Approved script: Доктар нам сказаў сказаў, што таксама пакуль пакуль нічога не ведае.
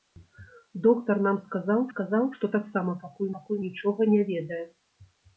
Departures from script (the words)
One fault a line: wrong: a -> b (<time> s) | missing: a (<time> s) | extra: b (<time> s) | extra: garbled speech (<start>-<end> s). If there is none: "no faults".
no faults